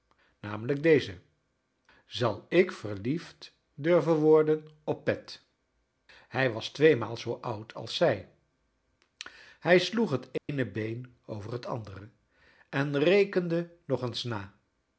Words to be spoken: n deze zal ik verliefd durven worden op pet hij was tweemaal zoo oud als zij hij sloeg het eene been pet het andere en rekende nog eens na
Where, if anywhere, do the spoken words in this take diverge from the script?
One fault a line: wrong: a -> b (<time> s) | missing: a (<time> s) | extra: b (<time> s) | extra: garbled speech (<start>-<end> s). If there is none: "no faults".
wrong: pet -> over (11.2 s)